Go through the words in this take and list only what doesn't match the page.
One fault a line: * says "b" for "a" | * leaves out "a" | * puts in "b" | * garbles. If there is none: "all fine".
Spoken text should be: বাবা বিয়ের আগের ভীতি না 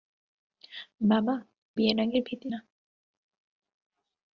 all fine